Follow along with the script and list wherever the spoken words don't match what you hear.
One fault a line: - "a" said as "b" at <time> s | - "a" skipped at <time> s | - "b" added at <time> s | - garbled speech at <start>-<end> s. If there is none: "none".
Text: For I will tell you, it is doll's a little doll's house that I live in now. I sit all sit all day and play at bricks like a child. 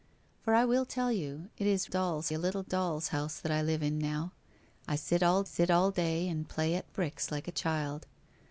none